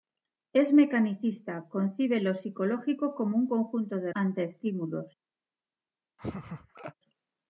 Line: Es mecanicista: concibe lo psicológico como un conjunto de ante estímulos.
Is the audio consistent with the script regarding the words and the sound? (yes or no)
no